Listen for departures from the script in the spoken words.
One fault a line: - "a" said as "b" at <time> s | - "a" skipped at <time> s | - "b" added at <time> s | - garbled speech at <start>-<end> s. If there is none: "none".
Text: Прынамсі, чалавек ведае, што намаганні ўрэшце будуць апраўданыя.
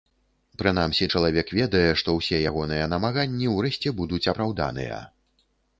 - "ўсе ягоныя" added at 2.2 s